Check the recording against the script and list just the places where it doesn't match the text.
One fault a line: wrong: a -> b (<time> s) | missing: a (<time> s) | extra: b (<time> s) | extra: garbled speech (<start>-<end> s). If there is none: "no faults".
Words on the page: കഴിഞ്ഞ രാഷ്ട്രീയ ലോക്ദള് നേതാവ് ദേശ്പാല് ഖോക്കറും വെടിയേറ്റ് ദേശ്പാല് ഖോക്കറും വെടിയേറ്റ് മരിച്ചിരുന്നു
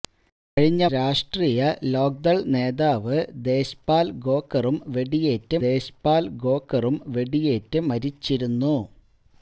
no faults